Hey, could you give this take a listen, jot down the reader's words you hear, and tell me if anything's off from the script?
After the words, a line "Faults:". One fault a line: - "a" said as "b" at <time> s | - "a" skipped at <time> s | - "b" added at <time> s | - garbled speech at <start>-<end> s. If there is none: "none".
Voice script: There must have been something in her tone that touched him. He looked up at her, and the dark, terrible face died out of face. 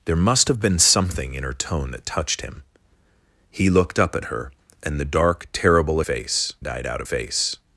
There must have been something in her tone that touched him. He looked up at her, and the dark, terrible face died out of face.
Faults:
none